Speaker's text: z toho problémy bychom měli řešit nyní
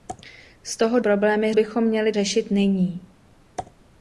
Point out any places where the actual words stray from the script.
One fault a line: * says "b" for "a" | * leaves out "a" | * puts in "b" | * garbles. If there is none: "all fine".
all fine